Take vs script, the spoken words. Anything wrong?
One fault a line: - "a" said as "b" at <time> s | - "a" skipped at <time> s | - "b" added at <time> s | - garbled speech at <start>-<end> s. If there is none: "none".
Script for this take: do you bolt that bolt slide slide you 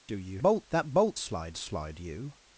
none